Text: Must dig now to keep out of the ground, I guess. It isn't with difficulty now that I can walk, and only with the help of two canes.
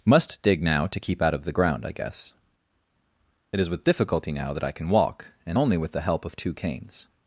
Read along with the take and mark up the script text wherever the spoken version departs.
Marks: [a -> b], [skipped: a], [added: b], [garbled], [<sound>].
Must dig now to keep out of the ground, I guess. It [isn't -> is] with difficulty now that I can walk, and only with the help of two canes.